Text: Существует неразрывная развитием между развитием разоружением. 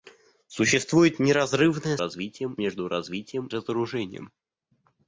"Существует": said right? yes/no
yes